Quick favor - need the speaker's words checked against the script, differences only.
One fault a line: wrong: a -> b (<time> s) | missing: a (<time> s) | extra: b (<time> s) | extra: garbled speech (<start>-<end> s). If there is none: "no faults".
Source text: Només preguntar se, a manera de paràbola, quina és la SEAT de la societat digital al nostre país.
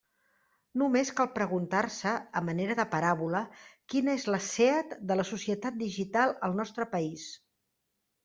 extra: cal (1.2 s)